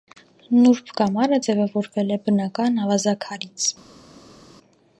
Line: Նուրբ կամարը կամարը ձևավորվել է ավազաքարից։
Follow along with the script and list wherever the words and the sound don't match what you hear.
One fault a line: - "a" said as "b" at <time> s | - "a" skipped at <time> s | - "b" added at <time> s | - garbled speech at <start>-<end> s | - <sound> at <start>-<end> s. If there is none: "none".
- "կամարը" skipped at 1.4 s
- "բնական" added at 2.3 s